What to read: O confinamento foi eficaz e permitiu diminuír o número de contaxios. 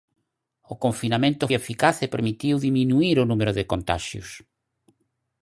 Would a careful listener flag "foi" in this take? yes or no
yes